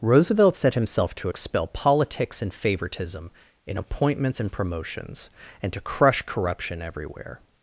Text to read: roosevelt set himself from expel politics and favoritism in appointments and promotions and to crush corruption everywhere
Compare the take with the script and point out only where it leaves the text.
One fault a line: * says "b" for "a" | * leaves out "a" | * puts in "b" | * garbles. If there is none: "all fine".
* says "to" for "from"